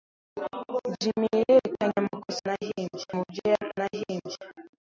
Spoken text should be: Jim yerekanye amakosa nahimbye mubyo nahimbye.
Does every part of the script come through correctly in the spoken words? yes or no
yes